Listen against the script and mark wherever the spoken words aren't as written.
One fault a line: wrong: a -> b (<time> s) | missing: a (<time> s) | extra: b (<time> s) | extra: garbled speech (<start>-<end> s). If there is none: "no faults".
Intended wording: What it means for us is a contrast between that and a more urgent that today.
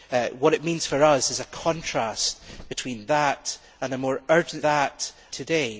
no faults